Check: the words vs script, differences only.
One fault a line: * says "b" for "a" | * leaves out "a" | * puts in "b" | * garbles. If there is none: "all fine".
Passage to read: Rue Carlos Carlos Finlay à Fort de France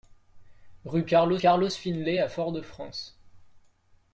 all fine